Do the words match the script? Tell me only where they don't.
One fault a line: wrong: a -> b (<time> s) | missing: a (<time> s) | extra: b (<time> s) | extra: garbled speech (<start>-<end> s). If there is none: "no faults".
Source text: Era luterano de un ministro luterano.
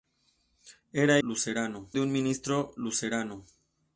no faults